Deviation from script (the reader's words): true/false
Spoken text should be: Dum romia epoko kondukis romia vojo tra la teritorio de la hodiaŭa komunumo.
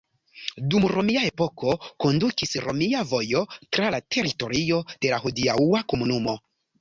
false